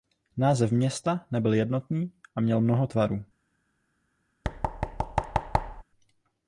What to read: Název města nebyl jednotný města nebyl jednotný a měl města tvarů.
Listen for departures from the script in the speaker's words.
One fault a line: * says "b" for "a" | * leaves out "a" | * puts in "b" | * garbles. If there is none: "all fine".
* leaves out "města nebyl jednotný"
* says "mnoho" for "města"